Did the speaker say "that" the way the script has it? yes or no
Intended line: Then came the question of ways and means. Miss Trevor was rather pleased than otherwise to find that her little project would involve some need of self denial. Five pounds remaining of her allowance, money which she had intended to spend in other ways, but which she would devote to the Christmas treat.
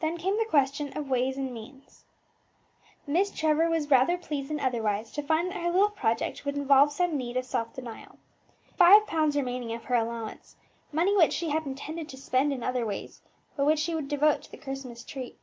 yes